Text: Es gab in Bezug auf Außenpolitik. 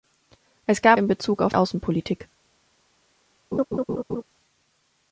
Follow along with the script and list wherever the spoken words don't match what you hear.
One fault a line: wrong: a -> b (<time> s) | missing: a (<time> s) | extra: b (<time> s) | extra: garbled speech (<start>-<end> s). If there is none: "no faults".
no faults